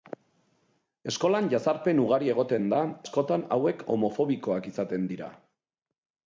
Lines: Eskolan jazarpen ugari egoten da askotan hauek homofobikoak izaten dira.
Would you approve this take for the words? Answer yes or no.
yes